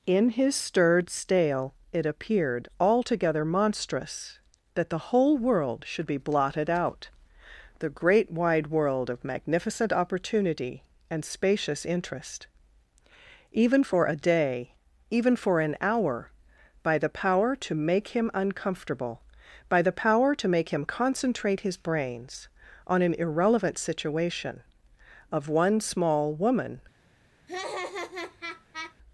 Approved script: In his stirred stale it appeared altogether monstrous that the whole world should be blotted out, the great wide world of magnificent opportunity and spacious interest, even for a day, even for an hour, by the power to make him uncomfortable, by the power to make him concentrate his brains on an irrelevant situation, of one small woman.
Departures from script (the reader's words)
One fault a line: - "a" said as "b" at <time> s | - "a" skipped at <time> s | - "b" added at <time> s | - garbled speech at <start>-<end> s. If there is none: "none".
none